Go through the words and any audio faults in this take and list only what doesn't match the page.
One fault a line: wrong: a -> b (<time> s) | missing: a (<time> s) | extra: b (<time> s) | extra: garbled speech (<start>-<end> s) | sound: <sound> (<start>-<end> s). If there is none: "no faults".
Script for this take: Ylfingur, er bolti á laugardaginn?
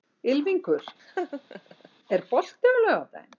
sound: laugh (1.0-1.9 s)